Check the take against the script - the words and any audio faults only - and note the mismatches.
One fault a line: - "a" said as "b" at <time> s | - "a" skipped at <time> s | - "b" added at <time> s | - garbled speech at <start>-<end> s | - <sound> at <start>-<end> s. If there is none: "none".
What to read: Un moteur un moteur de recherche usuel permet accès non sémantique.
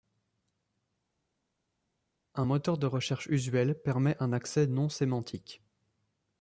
- "un moteur" skipped at 2.8 s
- "un" added at 4.2 s